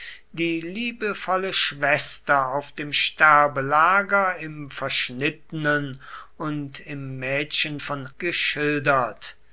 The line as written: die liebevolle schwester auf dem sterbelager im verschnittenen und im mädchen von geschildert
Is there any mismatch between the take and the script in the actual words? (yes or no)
no